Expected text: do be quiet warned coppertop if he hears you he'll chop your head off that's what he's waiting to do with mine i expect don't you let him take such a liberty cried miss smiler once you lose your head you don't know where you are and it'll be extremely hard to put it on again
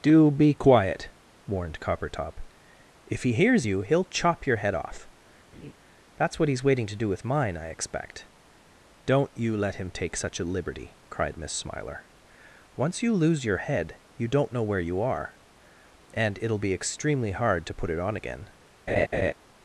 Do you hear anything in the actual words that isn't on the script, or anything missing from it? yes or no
no